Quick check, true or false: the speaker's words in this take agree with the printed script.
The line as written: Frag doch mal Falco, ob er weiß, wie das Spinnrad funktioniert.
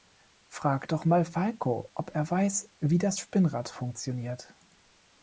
true